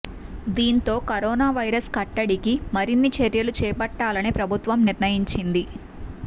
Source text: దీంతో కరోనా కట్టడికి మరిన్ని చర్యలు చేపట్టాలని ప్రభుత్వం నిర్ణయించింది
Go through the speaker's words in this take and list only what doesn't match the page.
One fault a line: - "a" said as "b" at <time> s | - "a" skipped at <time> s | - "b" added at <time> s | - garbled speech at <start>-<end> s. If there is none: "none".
- "వైరస్" added at 1.6 s